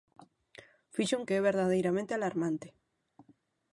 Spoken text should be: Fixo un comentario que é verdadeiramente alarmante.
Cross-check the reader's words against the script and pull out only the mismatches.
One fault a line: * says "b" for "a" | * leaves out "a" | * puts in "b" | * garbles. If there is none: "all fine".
* leaves out "comentario"